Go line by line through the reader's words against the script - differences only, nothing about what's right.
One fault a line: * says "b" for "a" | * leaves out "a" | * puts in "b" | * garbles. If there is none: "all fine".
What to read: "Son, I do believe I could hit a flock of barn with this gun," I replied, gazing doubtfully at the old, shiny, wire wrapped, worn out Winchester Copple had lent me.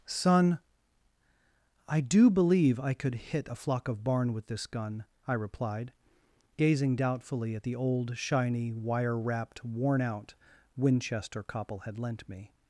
all fine